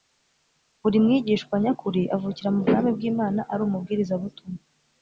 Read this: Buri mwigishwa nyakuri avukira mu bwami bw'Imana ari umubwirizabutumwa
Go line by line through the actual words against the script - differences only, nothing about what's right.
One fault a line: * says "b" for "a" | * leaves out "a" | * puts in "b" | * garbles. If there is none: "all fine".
all fine